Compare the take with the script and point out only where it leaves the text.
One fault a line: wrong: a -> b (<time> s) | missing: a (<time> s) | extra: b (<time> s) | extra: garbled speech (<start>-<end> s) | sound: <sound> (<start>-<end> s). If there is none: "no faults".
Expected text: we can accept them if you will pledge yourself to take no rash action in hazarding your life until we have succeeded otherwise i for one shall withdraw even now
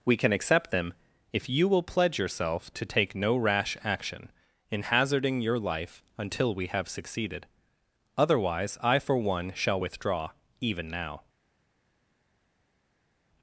no faults